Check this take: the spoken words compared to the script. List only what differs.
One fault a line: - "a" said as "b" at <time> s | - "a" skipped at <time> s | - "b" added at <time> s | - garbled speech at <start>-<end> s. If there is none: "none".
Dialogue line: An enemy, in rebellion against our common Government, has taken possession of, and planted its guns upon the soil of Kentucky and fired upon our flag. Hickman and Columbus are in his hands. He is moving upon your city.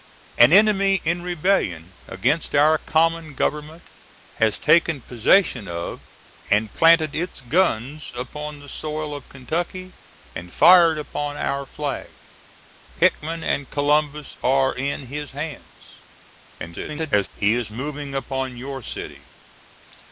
- garbled speech at 16.6-17.3 s